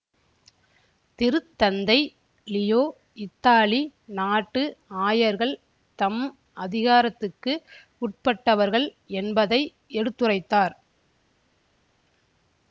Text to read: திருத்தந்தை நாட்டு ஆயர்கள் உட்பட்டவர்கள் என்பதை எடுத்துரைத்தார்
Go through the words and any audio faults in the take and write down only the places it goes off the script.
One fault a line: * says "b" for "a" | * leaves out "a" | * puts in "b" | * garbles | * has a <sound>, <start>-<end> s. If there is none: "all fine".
* puts in "லியோ இத்தாலி"
* puts in "தம் அதிகாரத்துக்கு"